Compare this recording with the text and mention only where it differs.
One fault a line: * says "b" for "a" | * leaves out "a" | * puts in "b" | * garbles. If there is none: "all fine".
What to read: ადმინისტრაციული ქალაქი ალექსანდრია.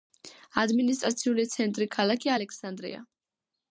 * puts in "ცენტრი"